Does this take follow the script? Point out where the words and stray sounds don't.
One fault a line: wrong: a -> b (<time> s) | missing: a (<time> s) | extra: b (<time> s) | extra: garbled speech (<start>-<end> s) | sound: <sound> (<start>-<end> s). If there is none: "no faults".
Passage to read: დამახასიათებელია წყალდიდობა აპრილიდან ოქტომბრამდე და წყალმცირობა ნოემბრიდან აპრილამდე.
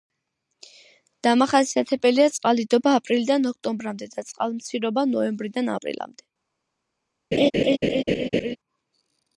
sound: laugh (7.3-8.6 s)